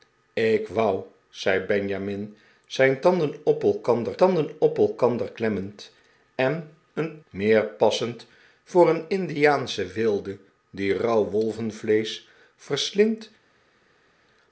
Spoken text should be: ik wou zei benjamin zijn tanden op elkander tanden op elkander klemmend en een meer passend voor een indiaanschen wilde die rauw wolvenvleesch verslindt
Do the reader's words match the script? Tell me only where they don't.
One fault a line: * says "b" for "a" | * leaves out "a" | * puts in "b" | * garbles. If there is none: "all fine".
all fine